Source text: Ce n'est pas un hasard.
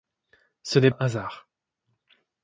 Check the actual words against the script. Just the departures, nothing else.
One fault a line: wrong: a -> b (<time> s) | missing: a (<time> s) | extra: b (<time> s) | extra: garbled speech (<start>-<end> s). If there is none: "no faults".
missing: pas (0.9 s)